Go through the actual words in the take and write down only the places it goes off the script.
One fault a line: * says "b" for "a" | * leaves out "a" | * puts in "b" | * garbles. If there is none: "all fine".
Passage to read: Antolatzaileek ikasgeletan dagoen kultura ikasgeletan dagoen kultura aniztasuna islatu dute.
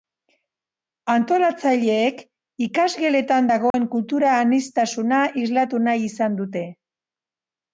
* says "aniztasuna islatu nahi izan" for "ikasgeletan dagoen kultura aniztasuna islatu"